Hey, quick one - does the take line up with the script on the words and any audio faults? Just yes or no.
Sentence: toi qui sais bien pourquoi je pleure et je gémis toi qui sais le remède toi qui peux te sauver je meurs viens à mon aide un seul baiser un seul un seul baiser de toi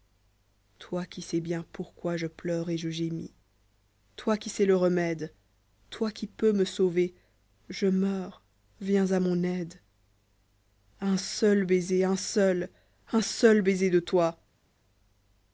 no